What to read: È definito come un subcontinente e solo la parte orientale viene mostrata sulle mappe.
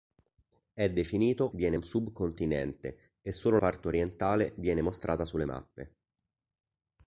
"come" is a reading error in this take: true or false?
true